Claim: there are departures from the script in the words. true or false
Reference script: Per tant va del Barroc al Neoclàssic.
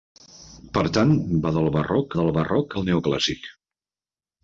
true